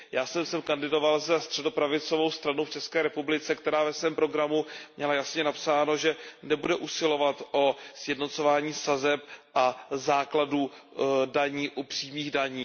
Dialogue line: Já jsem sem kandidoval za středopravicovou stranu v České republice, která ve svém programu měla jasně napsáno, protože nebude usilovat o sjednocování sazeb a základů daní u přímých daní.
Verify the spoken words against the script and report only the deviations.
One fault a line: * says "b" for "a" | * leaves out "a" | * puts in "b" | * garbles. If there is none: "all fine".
* says "že" for "protože"